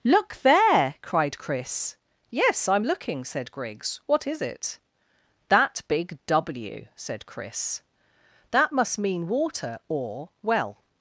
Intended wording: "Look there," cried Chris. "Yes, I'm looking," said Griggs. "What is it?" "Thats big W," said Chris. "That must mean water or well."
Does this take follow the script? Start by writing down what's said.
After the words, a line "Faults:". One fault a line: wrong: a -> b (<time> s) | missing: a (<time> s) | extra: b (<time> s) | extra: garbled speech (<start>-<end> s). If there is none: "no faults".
"Look there," cried Chris. "Yes, I'm looking," said Griggs. "What is it?" "That big W," said Chris. "That must mean water or well."
Faults:
wrong: Thats -> That (5.5 s)